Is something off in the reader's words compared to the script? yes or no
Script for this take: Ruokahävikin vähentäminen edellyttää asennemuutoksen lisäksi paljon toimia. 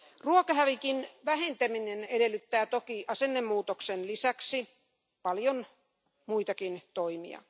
yes